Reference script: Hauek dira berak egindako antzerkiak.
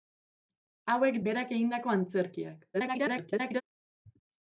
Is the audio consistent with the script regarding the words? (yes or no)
no